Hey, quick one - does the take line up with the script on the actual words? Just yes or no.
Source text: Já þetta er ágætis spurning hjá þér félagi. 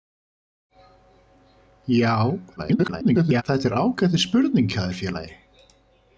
no